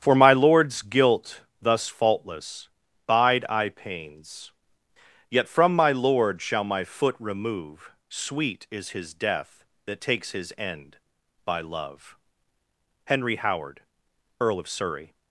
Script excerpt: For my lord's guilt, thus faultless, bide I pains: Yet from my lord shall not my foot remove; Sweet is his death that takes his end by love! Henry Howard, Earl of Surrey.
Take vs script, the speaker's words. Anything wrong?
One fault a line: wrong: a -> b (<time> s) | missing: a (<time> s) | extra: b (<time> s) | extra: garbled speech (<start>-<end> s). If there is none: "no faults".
missing: not (6.6 s)